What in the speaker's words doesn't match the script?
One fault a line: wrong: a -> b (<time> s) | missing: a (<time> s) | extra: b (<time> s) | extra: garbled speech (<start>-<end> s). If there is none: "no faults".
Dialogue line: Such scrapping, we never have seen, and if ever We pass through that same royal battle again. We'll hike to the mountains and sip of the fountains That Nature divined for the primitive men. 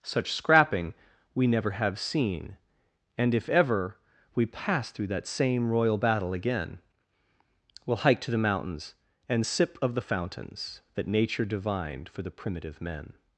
no faults